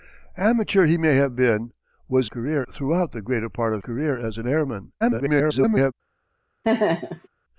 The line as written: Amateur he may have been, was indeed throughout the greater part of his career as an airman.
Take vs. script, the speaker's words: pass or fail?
fail